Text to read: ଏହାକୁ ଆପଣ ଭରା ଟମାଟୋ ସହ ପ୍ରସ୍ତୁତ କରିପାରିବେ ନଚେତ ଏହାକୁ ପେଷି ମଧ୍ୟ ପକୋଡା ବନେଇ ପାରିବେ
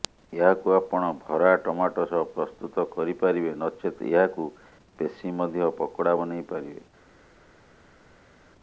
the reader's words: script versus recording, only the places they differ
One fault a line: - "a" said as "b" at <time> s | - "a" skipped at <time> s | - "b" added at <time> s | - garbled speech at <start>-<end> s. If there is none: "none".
none